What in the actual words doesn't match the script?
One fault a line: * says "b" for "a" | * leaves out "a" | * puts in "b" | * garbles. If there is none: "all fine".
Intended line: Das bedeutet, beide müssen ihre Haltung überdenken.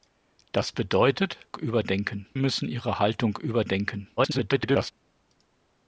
* says "überdenken" for "beide"
* garbles